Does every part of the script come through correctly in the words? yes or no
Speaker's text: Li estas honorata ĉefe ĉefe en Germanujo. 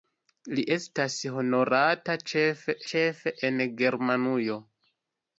yes